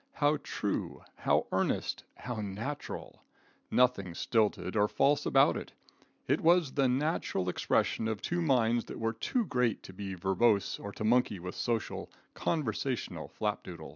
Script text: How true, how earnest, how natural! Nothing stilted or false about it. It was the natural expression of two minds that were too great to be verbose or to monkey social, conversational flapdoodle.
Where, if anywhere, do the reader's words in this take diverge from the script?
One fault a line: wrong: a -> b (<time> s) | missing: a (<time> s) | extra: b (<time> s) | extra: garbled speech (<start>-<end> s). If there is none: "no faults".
extra: with (11.4 s)